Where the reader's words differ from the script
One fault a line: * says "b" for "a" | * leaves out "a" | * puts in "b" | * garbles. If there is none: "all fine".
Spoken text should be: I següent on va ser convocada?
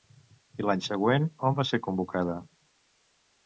* puts in "l'any"